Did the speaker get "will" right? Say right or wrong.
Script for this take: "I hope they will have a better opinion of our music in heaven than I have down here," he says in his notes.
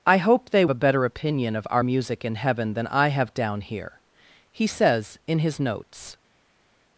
wrong